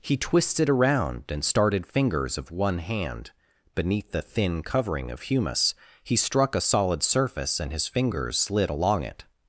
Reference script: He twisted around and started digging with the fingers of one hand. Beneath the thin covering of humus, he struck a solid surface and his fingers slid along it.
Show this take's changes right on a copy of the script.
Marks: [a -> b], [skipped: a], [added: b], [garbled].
He twisted around and started [skipped: digging with the] fingers of one hand. Beneath the thin covering of humus, he struck a solid surface and his fingers slid along it.